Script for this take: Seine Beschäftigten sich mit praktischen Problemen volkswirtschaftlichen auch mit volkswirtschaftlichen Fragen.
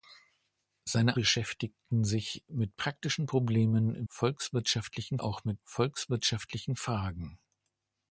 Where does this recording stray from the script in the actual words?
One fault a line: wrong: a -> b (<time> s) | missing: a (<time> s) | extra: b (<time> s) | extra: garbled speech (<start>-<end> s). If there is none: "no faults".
no faults